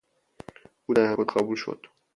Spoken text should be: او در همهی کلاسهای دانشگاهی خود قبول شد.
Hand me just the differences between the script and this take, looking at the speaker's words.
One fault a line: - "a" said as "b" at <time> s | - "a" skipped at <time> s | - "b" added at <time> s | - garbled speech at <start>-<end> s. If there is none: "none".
- "همهی کلاسهای دانشگاهی" skipped at 1.1 s